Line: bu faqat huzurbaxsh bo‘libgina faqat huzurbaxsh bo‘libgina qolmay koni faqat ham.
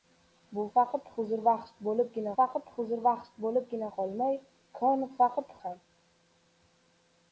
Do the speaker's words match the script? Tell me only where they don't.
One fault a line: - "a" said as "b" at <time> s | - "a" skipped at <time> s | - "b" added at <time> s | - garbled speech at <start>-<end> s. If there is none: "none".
none